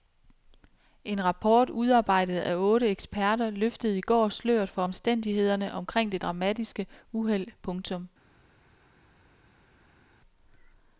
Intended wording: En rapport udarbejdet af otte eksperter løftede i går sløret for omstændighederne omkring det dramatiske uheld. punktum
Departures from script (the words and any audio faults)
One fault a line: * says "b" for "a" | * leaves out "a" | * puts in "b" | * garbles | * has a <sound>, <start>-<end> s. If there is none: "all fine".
all fine